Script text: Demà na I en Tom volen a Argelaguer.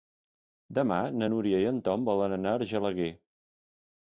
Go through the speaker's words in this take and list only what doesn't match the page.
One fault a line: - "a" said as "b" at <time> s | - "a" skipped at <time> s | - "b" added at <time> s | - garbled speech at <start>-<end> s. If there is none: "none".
- "Núria" added at 1.3 s
- "anar" added at 2.4 s